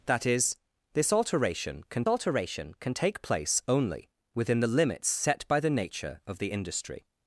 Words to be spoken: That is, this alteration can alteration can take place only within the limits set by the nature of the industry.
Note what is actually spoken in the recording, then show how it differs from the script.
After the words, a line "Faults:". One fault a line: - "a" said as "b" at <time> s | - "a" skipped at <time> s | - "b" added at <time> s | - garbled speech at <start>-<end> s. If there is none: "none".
That is, this alteration can alteration can take place only within the limits set by the nature of the industry.
Faults:
none